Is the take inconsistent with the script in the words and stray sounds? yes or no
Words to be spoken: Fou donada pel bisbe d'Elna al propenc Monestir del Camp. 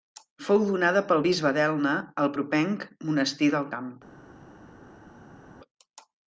no